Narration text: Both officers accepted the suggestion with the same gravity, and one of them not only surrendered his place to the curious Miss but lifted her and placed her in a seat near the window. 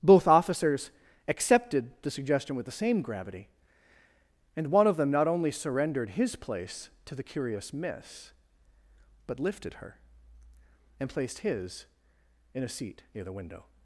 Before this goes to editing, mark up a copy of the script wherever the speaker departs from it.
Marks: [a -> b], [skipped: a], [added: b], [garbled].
Both officers accepted the suggestion with the same gravity, and one of them not only surrendered his place to the curious Miss but lifted her and placed [her -> his] in a seat near the window.